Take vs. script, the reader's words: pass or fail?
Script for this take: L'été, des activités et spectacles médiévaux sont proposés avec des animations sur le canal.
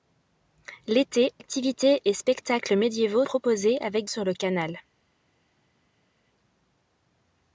fail